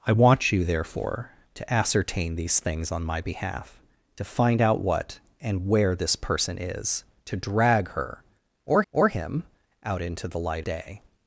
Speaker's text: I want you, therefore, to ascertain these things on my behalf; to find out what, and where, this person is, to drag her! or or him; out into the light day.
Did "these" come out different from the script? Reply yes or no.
no